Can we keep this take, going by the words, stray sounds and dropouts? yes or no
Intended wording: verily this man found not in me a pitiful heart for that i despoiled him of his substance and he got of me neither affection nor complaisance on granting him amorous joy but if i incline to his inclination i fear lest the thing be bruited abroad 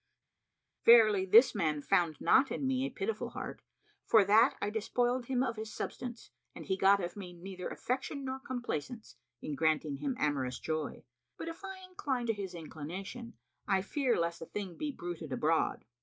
no